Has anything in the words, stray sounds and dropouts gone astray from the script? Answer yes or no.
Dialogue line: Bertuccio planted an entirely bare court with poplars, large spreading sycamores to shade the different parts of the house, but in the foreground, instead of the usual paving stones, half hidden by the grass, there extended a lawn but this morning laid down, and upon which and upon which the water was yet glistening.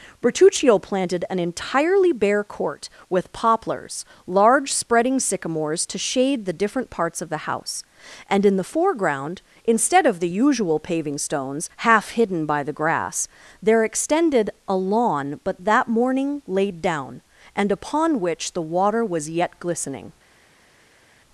yes